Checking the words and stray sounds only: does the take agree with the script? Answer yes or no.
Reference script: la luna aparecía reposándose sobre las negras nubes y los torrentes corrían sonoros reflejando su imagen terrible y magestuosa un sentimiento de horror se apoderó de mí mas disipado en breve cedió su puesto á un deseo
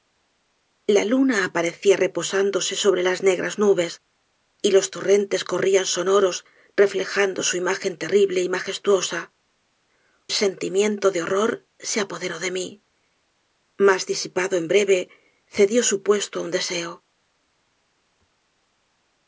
no